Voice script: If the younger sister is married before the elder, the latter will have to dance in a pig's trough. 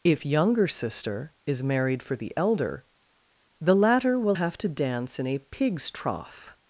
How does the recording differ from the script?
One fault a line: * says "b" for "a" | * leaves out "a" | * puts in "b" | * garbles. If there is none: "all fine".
* leaves out "the"
* says "for" for "before"